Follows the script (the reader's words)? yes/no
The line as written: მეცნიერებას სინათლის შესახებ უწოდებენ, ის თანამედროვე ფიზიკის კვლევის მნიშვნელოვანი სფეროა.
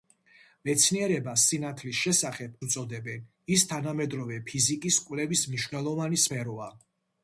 yes